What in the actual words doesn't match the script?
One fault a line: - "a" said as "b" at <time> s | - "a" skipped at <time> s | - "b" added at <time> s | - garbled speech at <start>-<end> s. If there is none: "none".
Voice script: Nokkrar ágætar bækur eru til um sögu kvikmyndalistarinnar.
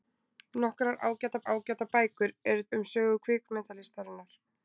- "ágætar" added at 1.5 s
- "til" skipped at 2.7 s